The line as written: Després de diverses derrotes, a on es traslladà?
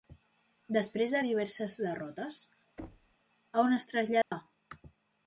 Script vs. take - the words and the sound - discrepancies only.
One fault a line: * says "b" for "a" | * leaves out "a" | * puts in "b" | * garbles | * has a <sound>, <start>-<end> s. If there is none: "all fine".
* has a thud, 2.8-3.2 s
* has a dropout, 4.2-4.3 s